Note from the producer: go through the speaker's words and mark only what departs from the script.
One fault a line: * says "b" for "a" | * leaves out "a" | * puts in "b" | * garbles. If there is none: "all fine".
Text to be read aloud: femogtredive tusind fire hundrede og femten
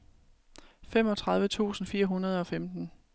all fine